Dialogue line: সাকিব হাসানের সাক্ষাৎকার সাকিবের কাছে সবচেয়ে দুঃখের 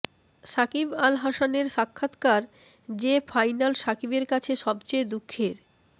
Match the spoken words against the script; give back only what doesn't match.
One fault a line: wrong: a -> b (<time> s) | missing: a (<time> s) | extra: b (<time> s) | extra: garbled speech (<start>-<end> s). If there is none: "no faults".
extra: আল (1.0 s)
extra: যে ফাইনাল (3.0 s)